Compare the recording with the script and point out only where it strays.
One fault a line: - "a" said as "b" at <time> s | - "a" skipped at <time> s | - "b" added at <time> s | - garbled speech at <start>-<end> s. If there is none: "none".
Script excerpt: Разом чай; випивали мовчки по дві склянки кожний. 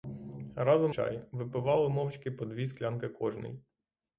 none